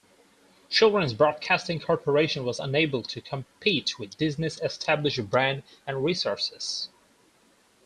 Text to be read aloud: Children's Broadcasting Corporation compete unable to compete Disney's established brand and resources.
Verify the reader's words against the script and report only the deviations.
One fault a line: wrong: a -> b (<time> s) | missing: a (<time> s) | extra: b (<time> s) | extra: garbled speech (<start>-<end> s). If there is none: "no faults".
wrong: compete -> was (2.4 s)
extra: with (4.0 s)